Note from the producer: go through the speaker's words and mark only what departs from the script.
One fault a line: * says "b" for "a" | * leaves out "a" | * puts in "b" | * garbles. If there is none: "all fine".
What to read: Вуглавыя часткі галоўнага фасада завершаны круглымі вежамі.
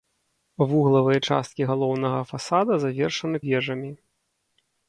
* leaves out "круглымі"